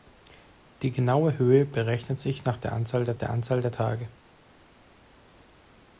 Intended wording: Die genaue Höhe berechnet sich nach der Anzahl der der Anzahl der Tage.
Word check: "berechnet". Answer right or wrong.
right